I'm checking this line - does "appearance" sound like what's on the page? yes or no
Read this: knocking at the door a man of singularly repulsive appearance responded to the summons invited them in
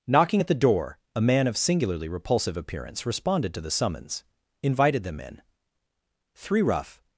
yes